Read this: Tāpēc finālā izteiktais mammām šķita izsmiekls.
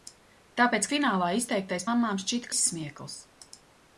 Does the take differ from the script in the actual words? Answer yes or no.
no